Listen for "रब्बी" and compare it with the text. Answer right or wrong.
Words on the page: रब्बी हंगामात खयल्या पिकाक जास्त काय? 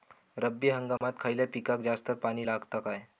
right